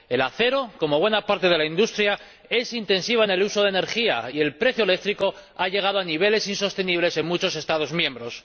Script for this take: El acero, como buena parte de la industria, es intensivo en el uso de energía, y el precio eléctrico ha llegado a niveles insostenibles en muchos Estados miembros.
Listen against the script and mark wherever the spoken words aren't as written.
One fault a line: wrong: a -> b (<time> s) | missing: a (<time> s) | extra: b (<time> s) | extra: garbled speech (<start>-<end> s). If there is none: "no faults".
no faults